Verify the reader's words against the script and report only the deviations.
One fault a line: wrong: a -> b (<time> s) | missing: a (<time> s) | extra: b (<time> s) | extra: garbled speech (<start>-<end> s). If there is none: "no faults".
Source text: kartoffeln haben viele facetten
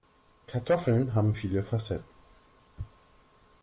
no faults